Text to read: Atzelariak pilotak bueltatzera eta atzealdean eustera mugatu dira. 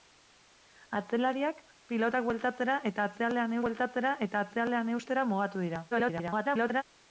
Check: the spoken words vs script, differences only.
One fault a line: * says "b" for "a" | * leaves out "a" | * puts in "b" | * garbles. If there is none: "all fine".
* puts in "bueltatzera eta atzealdean"
* garbles